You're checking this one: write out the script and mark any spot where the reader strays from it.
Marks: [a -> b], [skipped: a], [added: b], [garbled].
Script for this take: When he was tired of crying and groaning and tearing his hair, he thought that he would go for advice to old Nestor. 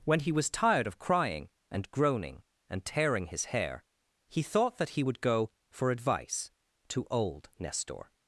When he was tired of crying and groaning and tearing his hair, he thought that he would go for advice to old Nestor.